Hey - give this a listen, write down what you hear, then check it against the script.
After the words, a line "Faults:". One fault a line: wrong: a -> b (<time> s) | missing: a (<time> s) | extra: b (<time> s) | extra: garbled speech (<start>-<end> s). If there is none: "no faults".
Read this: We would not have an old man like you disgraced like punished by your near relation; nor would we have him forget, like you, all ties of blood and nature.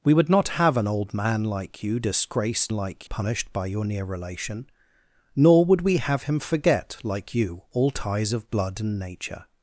We would not have an old man like you disgraced like punished by your near relation; nor would we have him forget, like you, all ties of blood and nature.
Faults:
no faults